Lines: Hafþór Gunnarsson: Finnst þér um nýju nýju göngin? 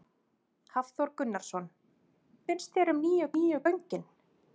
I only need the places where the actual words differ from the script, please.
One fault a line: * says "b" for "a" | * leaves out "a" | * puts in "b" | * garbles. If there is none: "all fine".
all fine